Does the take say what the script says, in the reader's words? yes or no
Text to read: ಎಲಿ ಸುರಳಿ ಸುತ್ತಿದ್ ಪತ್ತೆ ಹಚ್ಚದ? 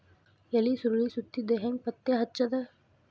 no